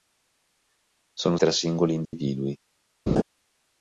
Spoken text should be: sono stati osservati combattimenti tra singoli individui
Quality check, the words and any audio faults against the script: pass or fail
fail